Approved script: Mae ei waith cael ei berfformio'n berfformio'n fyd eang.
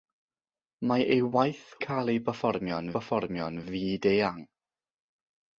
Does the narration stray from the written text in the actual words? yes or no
no